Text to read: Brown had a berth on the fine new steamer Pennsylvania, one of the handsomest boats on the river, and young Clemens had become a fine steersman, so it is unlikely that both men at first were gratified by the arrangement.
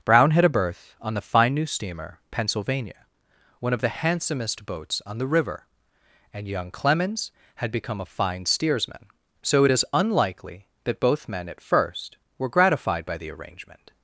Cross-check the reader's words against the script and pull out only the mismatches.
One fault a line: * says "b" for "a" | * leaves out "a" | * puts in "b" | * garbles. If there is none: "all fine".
all fine